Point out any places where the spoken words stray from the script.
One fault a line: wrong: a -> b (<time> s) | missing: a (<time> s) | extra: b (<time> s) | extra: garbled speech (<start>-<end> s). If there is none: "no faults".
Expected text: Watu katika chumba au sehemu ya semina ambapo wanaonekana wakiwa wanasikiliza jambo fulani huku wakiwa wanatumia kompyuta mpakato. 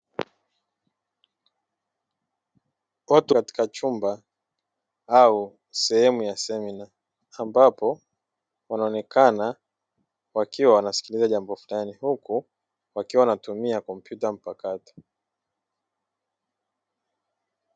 no faults